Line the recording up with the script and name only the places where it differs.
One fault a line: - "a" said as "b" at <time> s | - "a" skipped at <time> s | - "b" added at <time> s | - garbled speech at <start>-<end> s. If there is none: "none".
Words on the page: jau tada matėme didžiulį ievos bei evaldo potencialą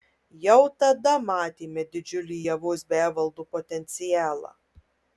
none